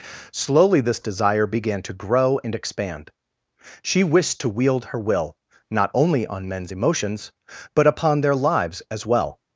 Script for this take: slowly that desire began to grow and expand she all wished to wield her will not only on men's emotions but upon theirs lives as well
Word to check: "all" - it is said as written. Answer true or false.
false